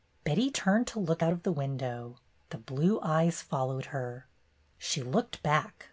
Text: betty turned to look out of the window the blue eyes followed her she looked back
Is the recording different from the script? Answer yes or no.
no